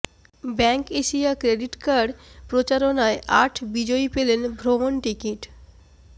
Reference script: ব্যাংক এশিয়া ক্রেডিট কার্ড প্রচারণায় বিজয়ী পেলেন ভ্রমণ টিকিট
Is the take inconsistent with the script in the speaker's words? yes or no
yes